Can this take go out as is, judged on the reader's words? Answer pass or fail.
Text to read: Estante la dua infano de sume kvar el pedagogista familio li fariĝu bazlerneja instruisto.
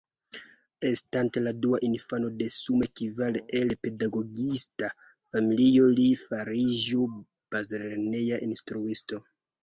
pass